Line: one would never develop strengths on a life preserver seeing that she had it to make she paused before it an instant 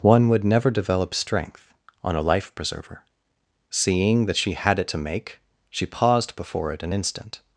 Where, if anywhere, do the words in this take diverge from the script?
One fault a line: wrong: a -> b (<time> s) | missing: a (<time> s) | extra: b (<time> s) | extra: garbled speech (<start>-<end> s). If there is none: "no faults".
wrong: strengths -> strength (1.1 s)